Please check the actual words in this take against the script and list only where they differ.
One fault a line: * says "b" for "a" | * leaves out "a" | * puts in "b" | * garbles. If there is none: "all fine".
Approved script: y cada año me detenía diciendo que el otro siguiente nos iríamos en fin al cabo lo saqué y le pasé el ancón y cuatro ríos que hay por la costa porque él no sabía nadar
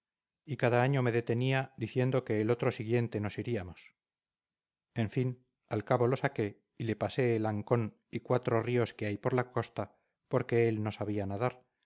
all fine